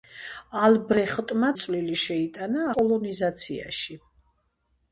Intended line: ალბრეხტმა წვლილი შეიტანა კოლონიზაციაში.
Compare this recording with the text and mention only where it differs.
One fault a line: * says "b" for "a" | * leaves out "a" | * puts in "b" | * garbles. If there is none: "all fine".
all fine